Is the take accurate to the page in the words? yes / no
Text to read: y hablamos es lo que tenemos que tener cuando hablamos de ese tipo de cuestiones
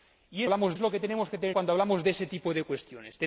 yes